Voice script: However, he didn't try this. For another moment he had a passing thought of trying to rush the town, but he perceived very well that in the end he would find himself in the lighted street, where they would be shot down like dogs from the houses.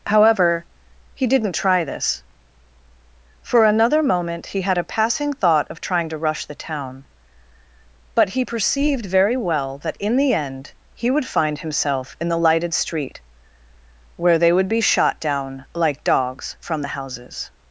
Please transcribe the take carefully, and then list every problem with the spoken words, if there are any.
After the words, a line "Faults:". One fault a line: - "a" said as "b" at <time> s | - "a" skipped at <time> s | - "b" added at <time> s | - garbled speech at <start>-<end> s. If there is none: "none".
However, he didn't try this. For another moment he had a passing thought of trying to rush the town, but he perceived very well that in the end he would find himself in the lighted street, where they would be shot down like dogs from the houses.
Faults:
none